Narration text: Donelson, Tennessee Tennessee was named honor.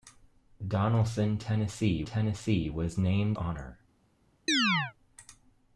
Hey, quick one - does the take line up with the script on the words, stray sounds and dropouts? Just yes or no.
no